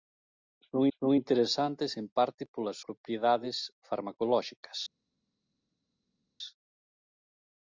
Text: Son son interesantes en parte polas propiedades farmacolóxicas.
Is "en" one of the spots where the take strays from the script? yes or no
no